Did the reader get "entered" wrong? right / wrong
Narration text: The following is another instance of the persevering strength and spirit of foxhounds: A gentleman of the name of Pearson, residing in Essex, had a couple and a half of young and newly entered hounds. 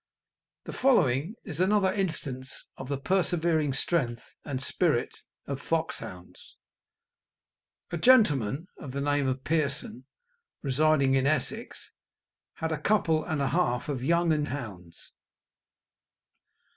wrong